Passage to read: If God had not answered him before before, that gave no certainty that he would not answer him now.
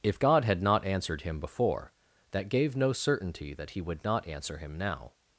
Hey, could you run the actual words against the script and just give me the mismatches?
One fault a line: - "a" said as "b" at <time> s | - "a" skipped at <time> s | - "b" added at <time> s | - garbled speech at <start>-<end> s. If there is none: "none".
- "before" skipped at 1.9 s